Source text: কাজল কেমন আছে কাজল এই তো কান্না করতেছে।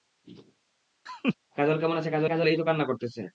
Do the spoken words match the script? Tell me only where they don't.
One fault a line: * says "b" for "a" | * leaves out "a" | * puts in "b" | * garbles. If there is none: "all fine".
* puts in "কাজল"